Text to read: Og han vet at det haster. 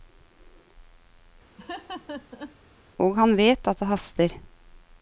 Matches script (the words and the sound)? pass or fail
fail